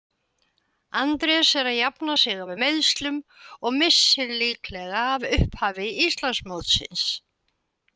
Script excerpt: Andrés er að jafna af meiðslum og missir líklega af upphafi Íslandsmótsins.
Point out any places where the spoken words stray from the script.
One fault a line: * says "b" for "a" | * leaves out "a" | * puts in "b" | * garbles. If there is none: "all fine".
* puts in "sig"